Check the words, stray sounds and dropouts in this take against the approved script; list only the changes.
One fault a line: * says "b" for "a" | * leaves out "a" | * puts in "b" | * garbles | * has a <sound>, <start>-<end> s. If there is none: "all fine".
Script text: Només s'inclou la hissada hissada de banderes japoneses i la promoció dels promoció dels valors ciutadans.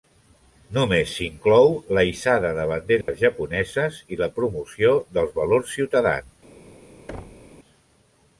* leaves out "hissada"
* has a dropout, 3.0-3.1 s
* leaves out "promoció dels"
* has a thud, 7.1-7.5 s